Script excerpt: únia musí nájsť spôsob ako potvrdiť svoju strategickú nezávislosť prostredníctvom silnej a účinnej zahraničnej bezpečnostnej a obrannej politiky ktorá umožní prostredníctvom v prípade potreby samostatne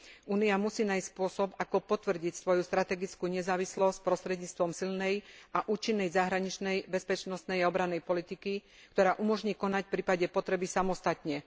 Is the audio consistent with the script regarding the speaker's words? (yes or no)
no